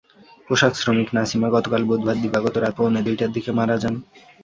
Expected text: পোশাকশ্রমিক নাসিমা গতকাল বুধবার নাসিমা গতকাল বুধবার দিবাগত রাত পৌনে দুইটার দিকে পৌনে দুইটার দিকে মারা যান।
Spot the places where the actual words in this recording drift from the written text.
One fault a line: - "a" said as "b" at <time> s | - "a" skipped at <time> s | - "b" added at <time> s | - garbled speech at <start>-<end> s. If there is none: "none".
- "নাসিমা গতকাল বুধবার" skipped at 2.2 s
- "পৌনে দুইটার দিকে" skipped at 3.5 s